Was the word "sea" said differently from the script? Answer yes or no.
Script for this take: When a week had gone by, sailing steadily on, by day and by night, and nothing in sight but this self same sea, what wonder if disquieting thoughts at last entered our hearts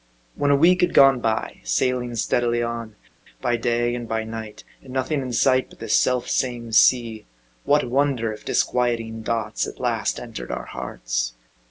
no